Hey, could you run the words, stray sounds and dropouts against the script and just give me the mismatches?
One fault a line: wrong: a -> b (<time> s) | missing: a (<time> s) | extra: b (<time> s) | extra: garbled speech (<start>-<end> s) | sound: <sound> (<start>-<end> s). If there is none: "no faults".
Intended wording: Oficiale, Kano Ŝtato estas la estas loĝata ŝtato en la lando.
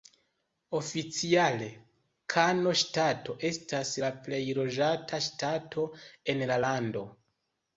wrong: estas -> plej (4.3 s)